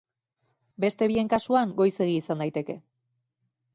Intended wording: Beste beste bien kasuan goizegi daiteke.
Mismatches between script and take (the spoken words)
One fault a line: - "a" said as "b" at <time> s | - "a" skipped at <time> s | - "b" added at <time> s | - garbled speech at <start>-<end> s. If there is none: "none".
- "beste" skipped at 1.1 s
- "izan" added at 2.2 s